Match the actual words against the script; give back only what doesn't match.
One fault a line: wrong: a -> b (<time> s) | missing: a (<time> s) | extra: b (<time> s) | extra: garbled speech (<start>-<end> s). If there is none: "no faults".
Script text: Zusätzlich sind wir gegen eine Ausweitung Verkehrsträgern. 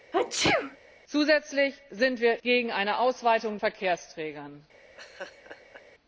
no faults